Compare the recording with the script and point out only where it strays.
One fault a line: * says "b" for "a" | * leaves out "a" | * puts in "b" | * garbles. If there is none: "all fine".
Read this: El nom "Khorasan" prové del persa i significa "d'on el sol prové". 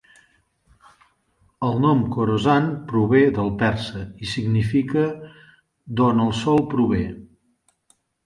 all fine